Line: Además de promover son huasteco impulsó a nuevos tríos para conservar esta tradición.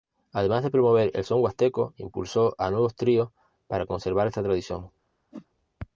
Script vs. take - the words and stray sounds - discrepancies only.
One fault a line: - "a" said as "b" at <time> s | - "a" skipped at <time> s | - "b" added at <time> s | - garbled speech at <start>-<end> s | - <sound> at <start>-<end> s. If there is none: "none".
- "el" added at 1.1 s
- whoosh at 5.3-5.5 s